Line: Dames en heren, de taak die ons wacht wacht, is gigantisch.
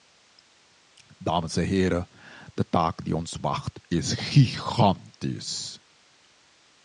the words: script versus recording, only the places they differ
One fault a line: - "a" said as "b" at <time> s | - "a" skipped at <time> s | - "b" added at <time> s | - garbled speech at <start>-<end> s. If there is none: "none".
- "wacht" skipped at 3.8 s